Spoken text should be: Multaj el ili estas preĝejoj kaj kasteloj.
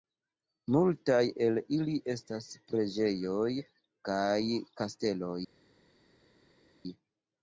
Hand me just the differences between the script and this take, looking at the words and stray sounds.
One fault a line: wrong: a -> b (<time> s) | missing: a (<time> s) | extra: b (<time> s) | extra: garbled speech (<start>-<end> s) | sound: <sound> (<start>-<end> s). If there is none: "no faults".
no faults